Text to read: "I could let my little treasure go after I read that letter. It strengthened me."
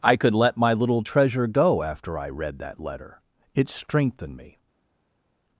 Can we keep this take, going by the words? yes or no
yes